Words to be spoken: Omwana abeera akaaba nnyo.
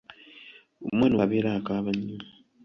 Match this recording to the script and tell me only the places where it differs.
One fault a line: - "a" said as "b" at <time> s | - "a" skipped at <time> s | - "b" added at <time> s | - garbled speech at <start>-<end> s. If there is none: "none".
none